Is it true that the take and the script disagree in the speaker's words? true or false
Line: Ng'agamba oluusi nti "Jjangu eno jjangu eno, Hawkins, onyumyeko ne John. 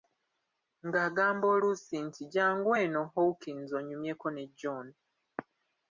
true